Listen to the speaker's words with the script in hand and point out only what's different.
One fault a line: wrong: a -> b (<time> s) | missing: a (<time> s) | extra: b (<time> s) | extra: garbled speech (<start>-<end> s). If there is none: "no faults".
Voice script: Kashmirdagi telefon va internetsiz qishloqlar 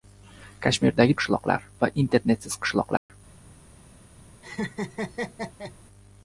wrong: telefon -> qishloqlar (1.2 s)